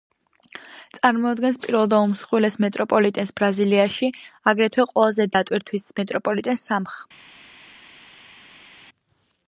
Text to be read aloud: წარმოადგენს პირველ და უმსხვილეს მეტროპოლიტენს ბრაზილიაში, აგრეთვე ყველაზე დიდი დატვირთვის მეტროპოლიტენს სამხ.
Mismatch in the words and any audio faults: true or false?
true